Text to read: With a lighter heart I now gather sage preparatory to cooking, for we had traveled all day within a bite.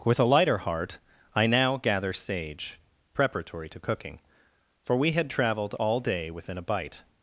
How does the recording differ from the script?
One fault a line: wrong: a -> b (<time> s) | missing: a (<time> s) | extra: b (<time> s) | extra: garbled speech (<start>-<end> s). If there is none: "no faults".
no faults